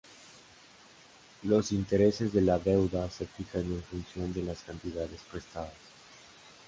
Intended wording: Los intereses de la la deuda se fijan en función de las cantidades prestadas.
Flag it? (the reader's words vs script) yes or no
yes